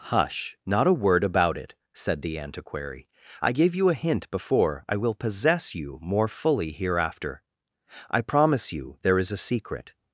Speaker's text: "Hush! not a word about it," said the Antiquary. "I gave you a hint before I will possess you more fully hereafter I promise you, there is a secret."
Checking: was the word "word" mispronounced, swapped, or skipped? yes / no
no